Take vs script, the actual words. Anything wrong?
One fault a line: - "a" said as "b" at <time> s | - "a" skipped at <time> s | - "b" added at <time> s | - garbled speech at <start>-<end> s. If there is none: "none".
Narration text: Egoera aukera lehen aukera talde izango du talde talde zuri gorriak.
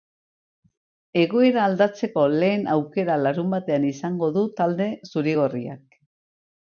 - "aukera" said as "aldatzeko" at 1.6 s
- "talde" said as "larunbatean" at 3.2 s
- "talde" skipped at 4.9 s